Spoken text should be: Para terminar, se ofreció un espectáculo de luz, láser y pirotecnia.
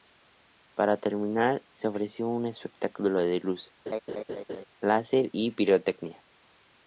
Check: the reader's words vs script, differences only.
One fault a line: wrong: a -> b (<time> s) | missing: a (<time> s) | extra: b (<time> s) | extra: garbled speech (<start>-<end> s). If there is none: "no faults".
no faults